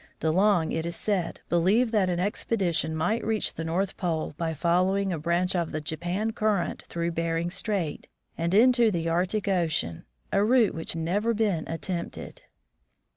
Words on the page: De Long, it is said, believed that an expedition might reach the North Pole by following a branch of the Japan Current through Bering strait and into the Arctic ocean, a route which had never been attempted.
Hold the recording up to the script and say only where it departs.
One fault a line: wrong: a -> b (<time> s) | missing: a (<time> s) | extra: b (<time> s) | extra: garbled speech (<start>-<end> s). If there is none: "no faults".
missing: had (10.9 s)